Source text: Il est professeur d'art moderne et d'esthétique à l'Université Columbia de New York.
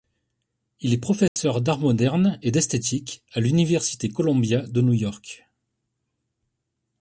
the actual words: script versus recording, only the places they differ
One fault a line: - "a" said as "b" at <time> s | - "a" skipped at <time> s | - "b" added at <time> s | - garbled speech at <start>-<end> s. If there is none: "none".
none